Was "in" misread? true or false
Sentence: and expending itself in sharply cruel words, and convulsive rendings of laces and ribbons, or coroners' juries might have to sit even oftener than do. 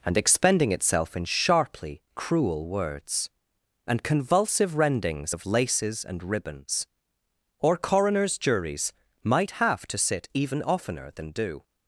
false